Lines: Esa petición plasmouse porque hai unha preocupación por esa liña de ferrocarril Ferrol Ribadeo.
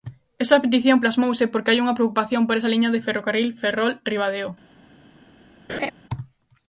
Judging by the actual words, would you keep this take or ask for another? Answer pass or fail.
pass